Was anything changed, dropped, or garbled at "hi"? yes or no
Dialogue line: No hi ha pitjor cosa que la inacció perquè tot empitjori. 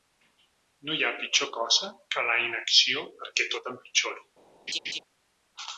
no